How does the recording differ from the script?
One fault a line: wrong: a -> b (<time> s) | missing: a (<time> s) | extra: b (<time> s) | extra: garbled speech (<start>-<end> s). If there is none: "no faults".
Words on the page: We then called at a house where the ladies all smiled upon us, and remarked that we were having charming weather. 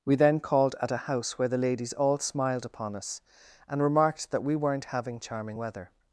wrong: were -> weren't (4.5 s)